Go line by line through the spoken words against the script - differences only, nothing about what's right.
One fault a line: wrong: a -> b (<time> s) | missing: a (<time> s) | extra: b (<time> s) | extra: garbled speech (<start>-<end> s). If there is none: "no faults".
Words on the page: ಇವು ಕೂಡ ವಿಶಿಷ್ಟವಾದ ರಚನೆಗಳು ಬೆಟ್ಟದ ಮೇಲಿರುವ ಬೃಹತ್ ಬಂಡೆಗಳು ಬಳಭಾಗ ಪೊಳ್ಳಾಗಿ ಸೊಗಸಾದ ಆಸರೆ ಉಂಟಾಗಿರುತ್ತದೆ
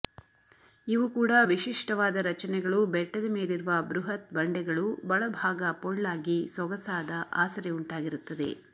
no faults